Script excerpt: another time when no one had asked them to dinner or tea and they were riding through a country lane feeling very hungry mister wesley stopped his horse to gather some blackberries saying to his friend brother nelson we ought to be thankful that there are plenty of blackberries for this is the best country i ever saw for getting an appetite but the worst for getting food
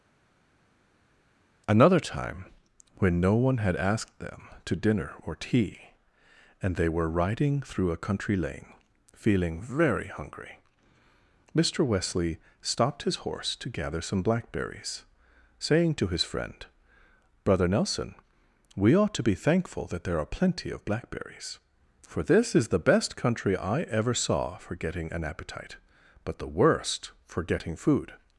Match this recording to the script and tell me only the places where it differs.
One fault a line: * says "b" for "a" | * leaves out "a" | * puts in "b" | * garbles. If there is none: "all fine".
all fine